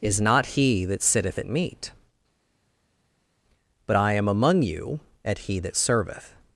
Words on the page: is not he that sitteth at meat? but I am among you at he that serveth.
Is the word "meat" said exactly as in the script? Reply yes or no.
yes